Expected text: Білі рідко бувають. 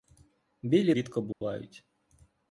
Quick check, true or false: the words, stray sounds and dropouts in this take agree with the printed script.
false